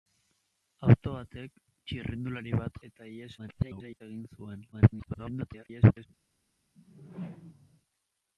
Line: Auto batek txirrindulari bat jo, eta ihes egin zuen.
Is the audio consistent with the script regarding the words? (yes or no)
no